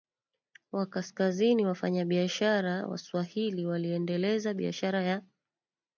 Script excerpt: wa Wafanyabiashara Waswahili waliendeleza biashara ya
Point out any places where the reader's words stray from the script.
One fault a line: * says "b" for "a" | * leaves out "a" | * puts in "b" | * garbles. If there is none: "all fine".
* puts in "Kaskazini"